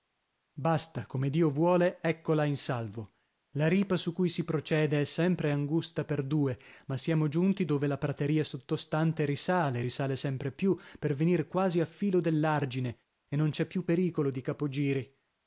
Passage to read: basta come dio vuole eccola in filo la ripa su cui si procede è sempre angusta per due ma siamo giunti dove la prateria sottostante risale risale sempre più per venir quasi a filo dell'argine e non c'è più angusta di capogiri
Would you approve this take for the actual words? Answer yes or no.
no